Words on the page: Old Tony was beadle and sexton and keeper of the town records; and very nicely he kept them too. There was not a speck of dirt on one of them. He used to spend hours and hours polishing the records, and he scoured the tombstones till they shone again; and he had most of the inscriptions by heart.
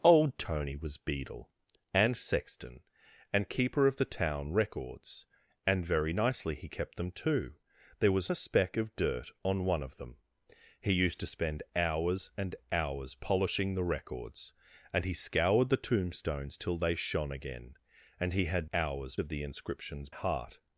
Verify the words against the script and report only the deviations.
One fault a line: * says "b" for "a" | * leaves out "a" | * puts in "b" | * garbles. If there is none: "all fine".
* leaves out "not"
* says "hours" for "most"
* leaves out "by"